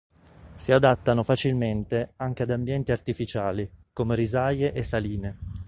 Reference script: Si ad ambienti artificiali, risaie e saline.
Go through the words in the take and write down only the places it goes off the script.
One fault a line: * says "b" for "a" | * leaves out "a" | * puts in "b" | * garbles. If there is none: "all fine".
* puts in "adattano facilmente anche"
* puts in "come"